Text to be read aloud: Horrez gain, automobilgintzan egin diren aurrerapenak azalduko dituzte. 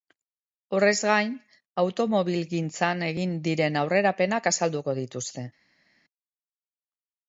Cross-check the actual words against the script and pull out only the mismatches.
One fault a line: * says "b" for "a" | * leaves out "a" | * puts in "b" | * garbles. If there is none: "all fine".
all fine